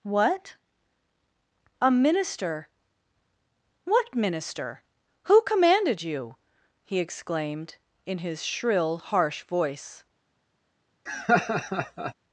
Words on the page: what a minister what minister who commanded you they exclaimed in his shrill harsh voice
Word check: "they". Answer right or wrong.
wrong